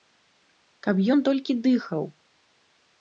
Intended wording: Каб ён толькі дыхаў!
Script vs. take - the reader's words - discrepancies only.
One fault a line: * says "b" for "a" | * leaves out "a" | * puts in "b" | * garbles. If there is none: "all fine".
all fine